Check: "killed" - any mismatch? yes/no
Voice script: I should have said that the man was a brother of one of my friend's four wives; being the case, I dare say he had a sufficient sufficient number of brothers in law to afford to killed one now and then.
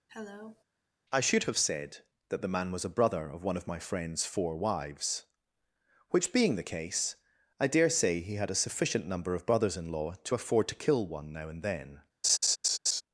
yes